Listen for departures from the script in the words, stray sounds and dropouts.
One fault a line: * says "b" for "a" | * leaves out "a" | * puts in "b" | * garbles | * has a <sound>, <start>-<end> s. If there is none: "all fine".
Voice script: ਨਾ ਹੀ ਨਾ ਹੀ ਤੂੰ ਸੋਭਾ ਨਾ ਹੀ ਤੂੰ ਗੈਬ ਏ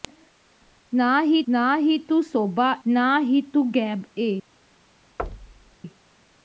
* has a thud, 5.2-5.8 s